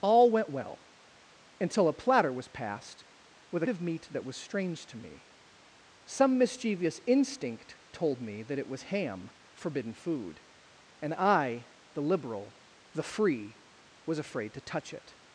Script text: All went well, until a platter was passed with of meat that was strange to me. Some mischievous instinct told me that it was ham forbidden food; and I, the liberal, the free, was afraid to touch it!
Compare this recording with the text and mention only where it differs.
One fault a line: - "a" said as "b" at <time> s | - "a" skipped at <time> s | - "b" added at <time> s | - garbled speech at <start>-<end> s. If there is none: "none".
none